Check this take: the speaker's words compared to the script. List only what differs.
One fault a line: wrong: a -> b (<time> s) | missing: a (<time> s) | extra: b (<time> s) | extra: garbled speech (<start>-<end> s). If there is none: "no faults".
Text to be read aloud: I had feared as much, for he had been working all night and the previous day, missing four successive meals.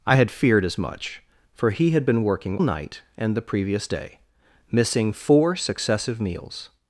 missing: all (2.6 s)